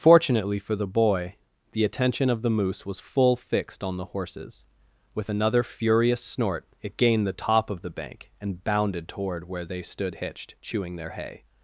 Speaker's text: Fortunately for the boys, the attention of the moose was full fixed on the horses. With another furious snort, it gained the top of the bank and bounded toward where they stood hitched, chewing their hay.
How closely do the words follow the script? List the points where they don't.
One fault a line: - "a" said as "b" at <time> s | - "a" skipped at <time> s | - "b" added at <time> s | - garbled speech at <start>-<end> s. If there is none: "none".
- "boys" said as "boy" at 0.9 s